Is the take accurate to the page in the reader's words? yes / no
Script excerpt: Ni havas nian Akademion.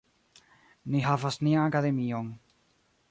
yes